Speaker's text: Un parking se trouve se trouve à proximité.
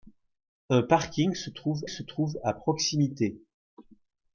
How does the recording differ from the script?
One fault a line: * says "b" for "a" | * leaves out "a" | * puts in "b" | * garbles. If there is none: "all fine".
all fine